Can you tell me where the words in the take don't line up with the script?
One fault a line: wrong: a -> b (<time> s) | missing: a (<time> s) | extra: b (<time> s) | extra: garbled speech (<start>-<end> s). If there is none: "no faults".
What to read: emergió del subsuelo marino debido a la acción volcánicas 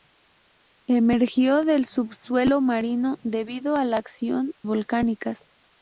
no faults